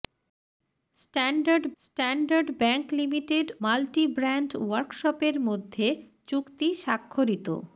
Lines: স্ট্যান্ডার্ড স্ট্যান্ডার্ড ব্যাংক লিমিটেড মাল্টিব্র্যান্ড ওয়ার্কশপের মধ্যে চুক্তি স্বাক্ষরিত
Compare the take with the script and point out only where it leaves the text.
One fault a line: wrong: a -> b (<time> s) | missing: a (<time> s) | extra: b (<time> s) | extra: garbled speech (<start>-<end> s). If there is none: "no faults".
no faults